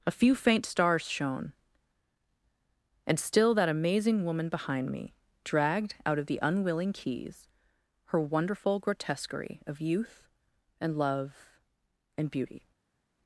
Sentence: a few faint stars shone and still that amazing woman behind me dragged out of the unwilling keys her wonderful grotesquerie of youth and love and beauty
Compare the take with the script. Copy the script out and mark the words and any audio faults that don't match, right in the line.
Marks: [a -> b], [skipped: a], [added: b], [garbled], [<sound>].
a few faint stars shone and still that amazing woman behind me dragged out of the unwilling keys her wonderful grotesquerie of youth and love and beauty